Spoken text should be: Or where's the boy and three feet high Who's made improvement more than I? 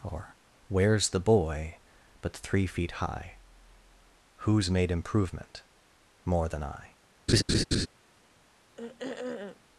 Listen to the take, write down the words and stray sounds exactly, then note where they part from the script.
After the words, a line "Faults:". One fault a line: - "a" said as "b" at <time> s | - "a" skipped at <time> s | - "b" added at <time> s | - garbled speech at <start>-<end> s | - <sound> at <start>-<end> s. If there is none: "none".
Or where's the boy but three feet high Who's made improvement more than I?
Faults:
- "and" said as "but" at 2.2 s
- laugh at 7.3-7.9 s
- throat clearing at 8.8-9.6 s